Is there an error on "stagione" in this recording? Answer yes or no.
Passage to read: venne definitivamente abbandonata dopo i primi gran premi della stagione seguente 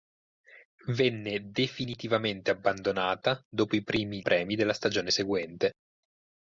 no